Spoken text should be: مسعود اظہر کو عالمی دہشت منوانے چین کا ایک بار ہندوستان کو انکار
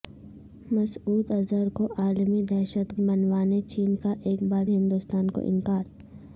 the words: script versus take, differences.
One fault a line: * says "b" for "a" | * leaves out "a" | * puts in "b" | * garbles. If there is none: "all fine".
all fine